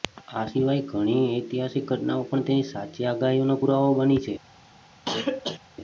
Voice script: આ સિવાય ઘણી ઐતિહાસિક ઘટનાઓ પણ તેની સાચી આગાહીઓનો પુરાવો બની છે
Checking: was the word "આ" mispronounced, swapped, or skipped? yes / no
no